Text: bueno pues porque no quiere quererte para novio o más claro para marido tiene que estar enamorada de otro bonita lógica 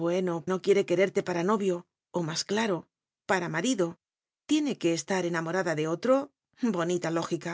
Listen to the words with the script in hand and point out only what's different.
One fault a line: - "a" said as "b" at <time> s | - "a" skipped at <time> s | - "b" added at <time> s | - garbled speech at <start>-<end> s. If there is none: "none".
- "pues porque" skipped at 0.5 s